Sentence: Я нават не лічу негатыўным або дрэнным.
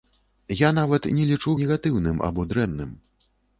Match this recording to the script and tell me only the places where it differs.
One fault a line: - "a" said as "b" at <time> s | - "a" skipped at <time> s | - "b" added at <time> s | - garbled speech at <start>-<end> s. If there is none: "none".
none